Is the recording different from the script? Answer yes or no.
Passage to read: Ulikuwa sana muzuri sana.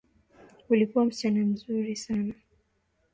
yes